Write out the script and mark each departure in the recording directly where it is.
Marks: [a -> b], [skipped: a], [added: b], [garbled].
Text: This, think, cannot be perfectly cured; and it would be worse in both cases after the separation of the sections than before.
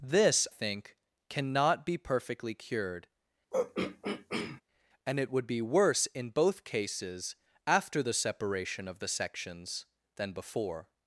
This, think, cannot be perfectly cured; and it would be worse in both cases after the separation of the sections than before.